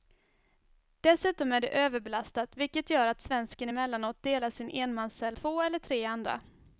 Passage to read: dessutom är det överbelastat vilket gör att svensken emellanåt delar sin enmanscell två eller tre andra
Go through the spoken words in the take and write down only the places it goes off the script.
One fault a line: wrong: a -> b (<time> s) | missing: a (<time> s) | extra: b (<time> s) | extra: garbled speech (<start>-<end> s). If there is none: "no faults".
no faults